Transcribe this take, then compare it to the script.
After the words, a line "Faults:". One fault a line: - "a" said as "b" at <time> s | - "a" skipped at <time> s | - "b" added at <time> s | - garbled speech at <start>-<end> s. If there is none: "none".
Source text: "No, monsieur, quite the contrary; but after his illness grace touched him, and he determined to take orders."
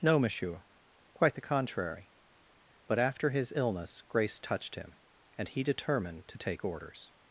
"No, monsieur, quite the contrary; but after his illness grace touched him, and he determined to take orders."
Faults:
none